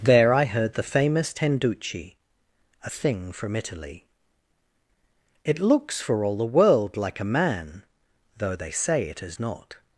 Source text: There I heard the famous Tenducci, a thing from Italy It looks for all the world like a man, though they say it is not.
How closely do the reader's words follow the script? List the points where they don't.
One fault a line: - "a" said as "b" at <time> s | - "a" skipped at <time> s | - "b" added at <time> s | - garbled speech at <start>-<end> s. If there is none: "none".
none